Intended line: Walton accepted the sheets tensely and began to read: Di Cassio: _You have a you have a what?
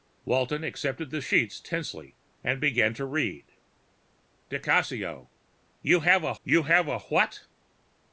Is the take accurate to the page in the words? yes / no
yes